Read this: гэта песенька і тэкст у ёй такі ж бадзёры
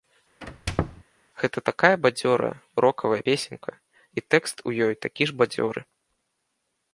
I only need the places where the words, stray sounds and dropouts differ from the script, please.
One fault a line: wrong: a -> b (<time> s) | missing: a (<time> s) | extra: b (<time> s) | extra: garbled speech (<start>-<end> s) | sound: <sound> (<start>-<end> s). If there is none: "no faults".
sound: squeak (0.4-1.0 s)
extra: такая бадзёрая рокавая (1.7 s)